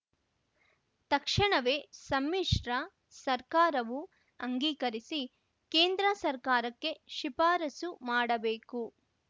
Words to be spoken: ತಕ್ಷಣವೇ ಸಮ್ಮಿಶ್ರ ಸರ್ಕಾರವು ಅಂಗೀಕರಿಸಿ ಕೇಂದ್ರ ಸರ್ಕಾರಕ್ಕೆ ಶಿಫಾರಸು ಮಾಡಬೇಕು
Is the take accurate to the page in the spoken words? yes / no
yes